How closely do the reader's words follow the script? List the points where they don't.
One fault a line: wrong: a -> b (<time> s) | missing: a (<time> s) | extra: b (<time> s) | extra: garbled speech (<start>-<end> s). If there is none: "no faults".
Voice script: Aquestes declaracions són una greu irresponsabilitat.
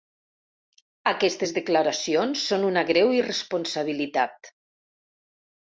no faults